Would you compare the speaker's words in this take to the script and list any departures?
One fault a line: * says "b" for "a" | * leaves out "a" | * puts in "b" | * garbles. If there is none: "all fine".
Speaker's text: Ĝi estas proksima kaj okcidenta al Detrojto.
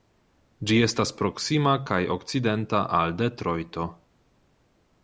all fine